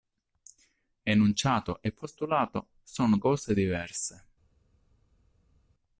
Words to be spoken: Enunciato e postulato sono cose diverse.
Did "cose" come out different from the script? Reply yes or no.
no